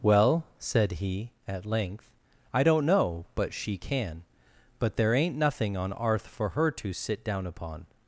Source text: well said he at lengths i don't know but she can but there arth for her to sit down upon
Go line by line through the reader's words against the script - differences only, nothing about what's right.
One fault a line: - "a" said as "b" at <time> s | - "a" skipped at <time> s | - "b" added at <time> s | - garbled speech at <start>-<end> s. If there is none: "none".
- "lengths" said as "length" at 1.6 s
- "ain't nothing on" added at 5.1 s